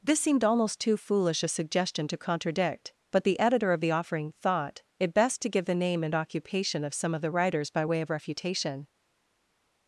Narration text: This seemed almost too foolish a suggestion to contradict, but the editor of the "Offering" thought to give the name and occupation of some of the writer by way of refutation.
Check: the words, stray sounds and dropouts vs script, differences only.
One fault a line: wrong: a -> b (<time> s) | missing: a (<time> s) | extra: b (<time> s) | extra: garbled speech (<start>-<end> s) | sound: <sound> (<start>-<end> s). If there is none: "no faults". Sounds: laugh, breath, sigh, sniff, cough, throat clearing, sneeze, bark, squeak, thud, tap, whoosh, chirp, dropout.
extra: it best (5.0 s)
wrong: writer -> writers (7.3 s)